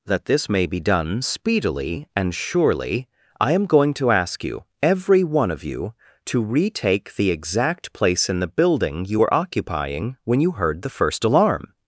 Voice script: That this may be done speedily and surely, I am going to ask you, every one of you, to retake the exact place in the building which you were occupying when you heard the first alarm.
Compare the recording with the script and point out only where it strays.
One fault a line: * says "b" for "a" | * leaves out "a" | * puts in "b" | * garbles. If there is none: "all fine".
* leaves out "which"